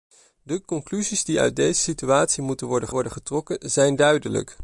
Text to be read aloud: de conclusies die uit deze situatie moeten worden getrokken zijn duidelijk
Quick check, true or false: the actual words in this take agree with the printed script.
false